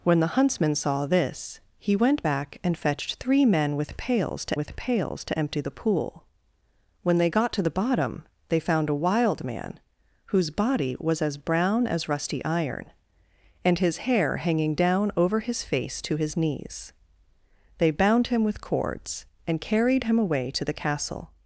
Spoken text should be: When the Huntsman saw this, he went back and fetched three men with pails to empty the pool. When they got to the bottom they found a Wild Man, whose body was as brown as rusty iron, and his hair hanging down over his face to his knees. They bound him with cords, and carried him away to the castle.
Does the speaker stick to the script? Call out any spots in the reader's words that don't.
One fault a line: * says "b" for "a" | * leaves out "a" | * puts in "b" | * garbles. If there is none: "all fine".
* puts in "with pails to"